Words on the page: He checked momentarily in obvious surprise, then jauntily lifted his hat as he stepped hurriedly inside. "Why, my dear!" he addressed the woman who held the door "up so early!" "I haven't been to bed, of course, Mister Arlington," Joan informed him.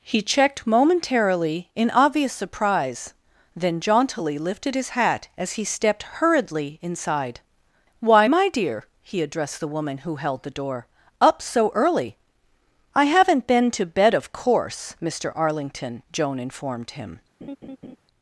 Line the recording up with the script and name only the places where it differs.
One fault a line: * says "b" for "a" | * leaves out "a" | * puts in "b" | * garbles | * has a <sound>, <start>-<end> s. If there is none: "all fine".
* has a laugh, 17.4-18.0 s